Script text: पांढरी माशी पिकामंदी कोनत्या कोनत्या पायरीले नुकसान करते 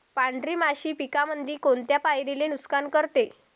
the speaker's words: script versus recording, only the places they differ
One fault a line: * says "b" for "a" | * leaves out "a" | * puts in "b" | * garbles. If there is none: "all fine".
* leaves out "कोनत्या"